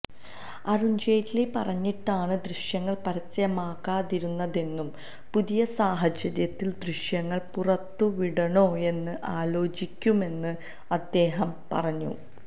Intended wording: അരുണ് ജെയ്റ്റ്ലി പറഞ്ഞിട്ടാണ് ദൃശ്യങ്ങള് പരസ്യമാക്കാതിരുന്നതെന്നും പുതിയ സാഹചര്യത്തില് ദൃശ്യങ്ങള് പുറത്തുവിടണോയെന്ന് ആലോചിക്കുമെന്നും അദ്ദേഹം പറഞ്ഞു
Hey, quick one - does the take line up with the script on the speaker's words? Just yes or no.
yes